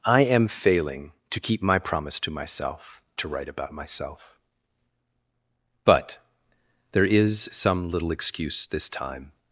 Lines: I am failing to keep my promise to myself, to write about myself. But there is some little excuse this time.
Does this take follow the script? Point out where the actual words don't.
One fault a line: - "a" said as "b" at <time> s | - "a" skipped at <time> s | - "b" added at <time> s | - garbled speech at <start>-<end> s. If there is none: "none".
none